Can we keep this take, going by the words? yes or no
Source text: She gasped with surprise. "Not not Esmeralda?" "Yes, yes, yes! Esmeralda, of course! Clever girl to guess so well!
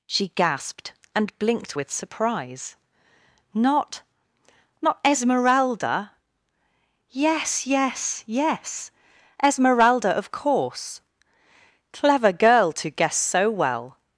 no